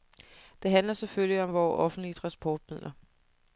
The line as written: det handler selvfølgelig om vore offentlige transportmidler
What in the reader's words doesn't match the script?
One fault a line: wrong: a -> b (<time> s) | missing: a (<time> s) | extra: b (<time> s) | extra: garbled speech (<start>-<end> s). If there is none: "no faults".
no faults